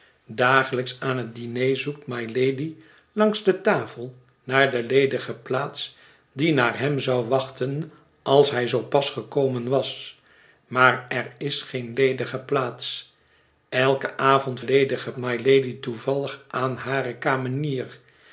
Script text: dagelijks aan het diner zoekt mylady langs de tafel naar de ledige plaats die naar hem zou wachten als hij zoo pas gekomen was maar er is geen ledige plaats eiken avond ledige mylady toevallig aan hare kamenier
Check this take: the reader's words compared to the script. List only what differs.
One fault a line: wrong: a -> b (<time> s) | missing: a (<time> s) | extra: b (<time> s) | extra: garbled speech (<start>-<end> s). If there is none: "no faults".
no faults